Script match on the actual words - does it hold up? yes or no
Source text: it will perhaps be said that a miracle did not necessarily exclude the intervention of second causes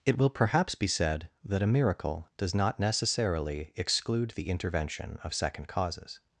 no